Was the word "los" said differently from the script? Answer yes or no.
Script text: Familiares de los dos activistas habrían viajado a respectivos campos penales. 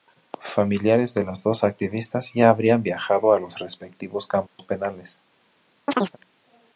yes